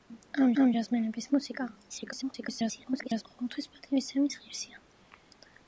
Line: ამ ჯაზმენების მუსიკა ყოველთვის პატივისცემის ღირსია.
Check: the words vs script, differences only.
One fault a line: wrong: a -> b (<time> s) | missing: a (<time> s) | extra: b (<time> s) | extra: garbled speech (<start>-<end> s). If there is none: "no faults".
extra: ამ (0.6 s)
extra: garbled speech (1.9-3.2 s)